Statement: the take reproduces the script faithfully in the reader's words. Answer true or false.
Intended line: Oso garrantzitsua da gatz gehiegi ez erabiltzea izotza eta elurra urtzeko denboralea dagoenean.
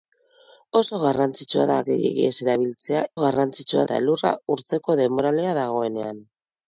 false